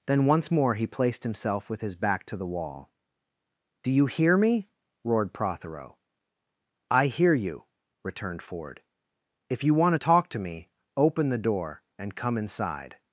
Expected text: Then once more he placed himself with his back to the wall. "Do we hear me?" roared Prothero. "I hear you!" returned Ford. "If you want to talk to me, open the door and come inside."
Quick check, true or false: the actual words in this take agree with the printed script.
false